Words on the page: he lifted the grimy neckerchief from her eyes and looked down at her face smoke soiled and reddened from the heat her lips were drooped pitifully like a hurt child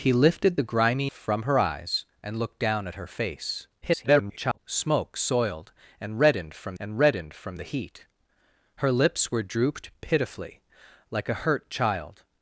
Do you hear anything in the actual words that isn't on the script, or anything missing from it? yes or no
yes